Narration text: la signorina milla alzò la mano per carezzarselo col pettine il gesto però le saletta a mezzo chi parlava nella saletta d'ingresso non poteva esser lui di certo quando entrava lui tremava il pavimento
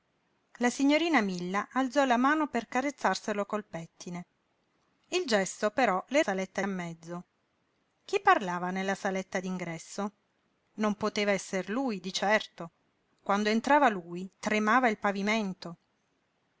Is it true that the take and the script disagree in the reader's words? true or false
false